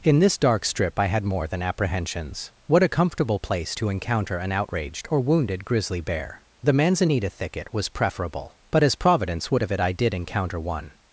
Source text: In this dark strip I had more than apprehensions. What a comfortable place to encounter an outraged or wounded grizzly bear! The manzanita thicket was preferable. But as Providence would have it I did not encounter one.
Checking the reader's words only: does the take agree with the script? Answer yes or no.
no